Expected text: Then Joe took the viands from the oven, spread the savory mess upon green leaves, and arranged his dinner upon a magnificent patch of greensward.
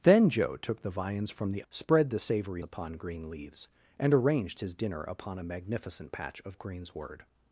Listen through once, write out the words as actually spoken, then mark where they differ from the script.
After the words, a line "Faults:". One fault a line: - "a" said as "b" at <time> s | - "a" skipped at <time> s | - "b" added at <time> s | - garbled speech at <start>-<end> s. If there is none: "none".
Then Joe took the viands from the spread the savory upon green leaves, and arranged his dinner upon a magnificent patch of greensward.
Faults:
- "oven" skipped at 1.6 s
- "mess" skipped at 2.6 s